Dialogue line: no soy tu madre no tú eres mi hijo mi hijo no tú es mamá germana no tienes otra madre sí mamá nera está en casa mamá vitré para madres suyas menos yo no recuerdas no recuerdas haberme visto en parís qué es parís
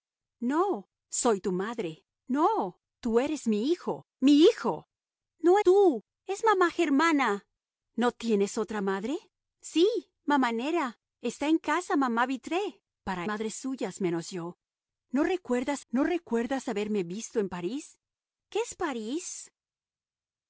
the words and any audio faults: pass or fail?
pass